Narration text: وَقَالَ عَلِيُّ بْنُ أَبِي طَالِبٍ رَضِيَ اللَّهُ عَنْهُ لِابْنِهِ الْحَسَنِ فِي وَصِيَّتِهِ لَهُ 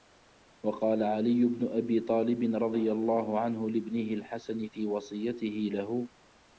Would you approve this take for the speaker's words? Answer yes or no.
yes